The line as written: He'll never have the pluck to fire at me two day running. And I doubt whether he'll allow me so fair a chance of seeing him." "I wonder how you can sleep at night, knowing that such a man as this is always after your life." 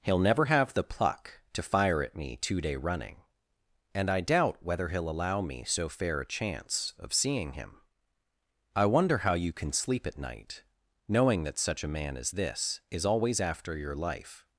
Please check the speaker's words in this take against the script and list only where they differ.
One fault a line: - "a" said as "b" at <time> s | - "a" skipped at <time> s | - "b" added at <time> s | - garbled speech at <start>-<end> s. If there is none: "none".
none